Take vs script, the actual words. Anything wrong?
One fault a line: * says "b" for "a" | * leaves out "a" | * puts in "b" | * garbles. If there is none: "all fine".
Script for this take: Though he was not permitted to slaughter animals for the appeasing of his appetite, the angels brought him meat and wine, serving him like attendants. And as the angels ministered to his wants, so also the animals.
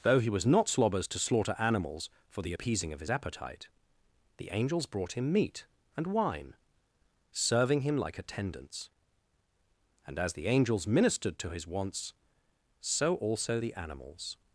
* says "slobbers" for "permitted"